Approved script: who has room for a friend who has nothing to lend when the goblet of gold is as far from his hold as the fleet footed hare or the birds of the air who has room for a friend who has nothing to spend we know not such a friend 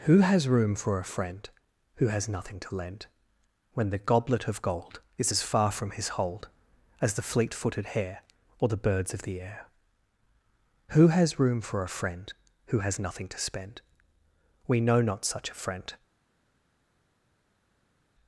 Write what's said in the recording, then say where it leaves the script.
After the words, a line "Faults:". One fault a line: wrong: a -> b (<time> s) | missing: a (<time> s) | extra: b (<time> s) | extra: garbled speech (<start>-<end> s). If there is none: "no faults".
who has room for a friend who has nothing to lend when the goblet of gold is as far from his hold as the fleet footed hare or the birds of the air who has room for a friend who has nothing to spend we know not such a friend
Faults:
no faults